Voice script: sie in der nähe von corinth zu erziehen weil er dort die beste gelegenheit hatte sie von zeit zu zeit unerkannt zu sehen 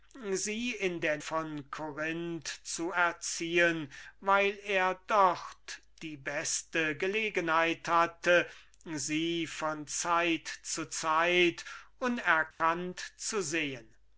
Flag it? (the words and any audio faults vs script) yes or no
yes